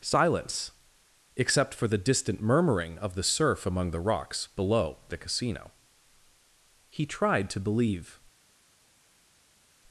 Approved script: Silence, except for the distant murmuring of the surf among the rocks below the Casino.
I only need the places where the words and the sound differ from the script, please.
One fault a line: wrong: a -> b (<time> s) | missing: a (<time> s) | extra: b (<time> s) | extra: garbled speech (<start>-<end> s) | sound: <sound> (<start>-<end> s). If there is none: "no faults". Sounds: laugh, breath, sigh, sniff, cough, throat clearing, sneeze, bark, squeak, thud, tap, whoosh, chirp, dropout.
extra: He tried to believe (6.9 s)